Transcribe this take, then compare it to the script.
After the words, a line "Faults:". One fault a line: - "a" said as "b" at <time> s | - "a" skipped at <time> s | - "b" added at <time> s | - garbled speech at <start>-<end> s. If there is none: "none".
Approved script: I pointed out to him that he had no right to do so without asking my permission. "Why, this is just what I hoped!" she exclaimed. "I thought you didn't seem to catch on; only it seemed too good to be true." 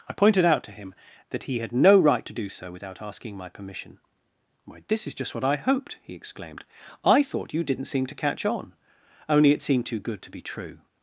I pointed out to him that he had no right to do so without asking my permission. "Why, this is just what I hoped!" he exclaimed. "I thought you didn't seem to catch on; only it seemed too good to be true."
Faults:
- "she" said as "he" at 6.0 s